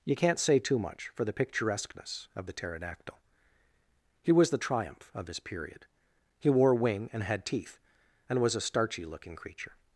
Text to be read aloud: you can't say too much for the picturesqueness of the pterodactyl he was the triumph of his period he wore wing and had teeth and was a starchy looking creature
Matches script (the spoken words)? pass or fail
pass